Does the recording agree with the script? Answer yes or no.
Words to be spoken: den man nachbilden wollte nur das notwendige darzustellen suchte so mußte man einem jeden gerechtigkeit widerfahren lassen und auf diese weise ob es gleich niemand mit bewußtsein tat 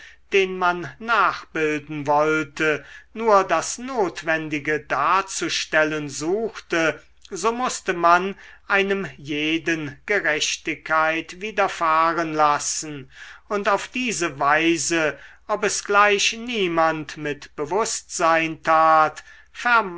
yes